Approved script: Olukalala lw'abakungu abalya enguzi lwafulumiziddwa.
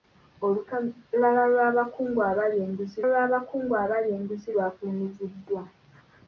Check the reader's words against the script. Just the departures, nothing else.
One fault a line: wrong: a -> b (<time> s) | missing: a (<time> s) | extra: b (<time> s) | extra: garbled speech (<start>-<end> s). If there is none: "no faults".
extra: lw'abakungu abalya enguzi (3.1 s)